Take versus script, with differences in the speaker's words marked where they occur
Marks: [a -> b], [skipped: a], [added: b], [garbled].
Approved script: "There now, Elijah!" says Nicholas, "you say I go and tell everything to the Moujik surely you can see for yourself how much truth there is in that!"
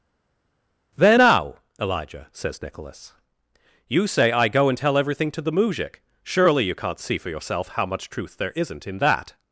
"There now, Elijah!" says Nicholas, "you say I go and tell everything to the Moujik surely you [can -> can't] see for yourself how much truth there [is -> isn't] in that!"